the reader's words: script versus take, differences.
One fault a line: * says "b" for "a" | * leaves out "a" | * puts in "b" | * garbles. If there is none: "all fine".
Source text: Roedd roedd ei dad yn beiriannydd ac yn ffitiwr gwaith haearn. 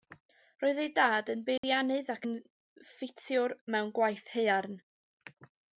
* leaves out "roedd"
* puts in "mewn"